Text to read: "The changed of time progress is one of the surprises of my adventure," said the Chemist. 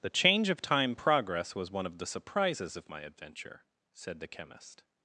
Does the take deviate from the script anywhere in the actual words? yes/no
yes